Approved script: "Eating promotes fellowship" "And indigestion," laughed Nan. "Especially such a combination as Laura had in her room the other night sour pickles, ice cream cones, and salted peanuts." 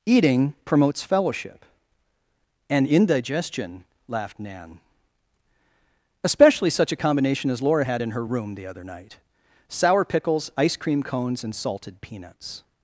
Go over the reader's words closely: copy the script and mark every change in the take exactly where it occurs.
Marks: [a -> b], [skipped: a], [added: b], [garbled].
"Eating promotes fellowship" "And indigestion," laughed Nan. "Especially such a combination as Laura had in her room the other night sour pickles, ice cream cones, and salted peanuts."